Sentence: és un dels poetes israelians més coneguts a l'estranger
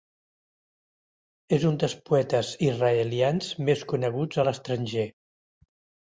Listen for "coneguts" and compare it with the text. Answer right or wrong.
right